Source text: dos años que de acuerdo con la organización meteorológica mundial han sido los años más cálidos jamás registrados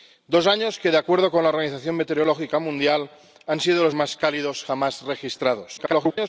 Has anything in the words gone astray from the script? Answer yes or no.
yes